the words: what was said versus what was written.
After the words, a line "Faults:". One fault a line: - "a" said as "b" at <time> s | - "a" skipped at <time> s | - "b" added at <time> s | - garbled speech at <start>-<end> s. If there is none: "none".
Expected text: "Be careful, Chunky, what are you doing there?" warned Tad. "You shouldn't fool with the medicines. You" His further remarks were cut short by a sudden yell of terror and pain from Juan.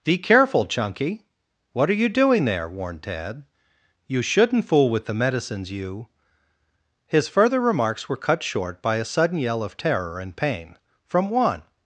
"Be careful, Chunky, what are you doing there?" warned Tad. "You shouldn't fool with the medicines. You" His further remarks were cut short by a sudden yell of terror and pain from Juan.
Faults:
none